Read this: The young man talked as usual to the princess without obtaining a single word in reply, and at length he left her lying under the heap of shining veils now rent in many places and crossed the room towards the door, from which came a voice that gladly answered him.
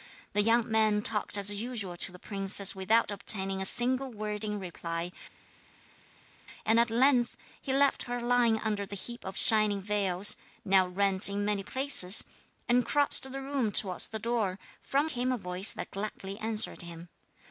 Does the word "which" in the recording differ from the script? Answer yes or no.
yes